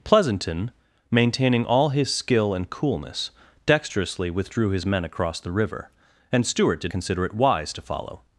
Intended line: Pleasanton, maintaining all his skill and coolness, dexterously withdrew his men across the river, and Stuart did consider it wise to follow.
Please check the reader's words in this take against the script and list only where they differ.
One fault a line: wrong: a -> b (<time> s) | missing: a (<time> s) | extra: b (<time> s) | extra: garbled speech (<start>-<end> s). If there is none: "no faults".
no faults